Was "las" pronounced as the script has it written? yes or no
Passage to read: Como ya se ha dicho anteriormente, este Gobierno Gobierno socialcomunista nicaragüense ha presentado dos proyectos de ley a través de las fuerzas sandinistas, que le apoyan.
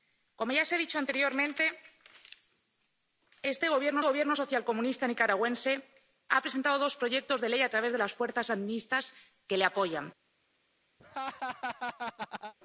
yes